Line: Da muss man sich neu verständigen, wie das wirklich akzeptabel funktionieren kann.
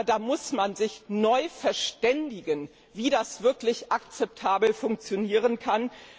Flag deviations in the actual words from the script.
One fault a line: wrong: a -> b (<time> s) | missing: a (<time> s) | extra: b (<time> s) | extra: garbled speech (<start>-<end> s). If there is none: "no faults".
no faults